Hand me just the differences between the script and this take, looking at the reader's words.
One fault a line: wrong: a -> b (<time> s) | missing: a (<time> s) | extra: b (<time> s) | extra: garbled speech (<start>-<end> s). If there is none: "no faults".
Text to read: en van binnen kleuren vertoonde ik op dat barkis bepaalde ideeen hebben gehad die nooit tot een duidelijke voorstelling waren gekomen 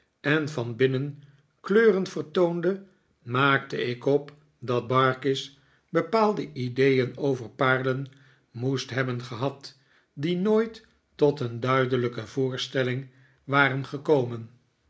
extra: maakte (3.2 s)
extra: over paarlen moest (7.2 s)